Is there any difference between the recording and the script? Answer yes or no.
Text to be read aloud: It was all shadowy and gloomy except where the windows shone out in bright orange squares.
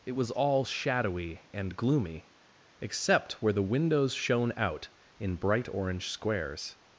no